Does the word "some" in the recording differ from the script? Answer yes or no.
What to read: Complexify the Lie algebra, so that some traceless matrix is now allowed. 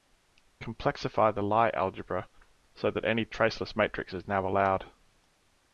yes